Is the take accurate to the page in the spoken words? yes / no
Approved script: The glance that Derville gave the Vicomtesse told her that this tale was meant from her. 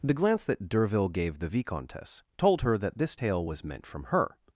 yes